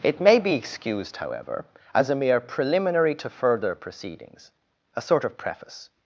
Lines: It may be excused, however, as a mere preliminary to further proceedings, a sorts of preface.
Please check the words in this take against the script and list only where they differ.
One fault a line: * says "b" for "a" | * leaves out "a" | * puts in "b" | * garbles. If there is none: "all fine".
* says "sort" for "sorts"